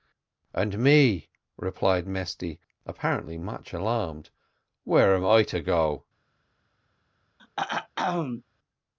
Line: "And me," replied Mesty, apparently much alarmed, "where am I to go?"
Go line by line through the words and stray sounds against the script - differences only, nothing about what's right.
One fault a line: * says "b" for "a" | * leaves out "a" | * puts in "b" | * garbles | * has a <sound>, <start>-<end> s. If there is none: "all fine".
* has a throat clearing, 7.4-8.4 s